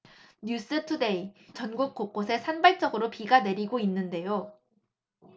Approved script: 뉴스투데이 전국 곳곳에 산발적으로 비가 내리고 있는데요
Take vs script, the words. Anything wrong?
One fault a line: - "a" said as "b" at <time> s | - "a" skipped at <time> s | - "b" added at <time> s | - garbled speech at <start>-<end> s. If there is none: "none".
none